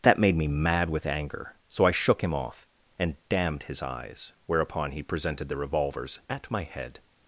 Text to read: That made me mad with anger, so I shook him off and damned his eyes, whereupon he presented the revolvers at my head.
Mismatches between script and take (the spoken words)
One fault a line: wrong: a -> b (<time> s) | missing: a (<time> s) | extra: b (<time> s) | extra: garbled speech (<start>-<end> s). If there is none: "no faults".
no faults